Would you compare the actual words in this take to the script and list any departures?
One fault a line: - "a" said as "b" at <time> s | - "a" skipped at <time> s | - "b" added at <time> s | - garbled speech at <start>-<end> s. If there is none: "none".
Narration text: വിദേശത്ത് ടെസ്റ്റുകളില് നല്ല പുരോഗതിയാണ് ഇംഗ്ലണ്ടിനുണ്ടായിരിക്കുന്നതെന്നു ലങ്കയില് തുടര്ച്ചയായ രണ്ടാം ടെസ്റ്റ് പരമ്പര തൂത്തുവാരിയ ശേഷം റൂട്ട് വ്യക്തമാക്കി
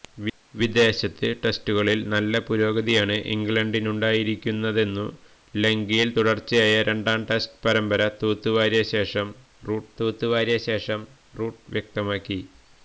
- "തൂത്തുവാരിയ ശേഷം റൂട്ട്" added at 10.0 s